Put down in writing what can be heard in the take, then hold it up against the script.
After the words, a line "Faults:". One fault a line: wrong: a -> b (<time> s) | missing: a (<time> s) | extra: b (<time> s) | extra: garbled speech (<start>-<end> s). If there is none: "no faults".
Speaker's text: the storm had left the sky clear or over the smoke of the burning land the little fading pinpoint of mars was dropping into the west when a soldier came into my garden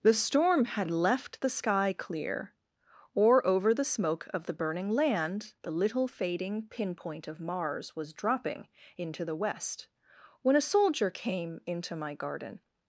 the storm had left the sky clear or over the smoke of the burning land the little fading pinpoint of mars was dropping into the west when a soldier came into my garden
Faults:
no faults